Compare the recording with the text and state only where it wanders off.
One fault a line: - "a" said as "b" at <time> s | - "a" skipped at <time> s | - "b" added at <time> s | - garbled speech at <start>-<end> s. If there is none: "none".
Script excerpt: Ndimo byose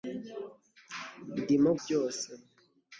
none